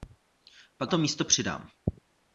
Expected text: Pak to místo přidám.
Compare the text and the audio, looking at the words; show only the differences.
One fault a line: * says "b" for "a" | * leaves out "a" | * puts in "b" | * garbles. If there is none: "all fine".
all fine